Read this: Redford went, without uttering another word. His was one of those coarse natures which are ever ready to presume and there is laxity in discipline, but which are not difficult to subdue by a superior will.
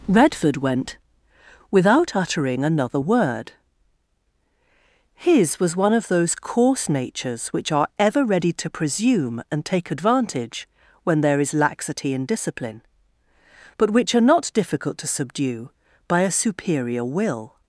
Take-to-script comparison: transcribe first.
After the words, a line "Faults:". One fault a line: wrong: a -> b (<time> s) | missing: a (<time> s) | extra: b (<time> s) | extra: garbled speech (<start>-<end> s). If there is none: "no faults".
Redford went, without uttering another word. His was one of those coarse natures which are ever ready to presume and take advantage when there is laxity in discipline, but which are not difficult to subdue by a superior will.
Faults:
extra: take advantage when (9.6 s)